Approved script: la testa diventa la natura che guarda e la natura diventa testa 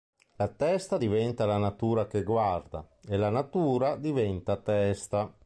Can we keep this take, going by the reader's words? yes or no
yes